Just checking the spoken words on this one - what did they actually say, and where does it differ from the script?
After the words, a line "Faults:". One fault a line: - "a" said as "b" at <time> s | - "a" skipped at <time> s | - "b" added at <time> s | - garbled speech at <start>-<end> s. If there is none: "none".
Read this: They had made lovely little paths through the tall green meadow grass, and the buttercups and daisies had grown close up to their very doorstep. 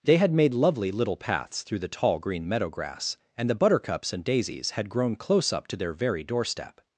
They had made lovely little paths through the tall green meadow grass, and the buttercups and daisies had grown close up to their very doorstep.
Faults:
none